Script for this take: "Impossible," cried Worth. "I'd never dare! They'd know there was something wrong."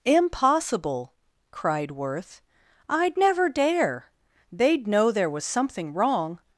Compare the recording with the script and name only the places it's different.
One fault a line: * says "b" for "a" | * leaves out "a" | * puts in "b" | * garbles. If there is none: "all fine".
all fine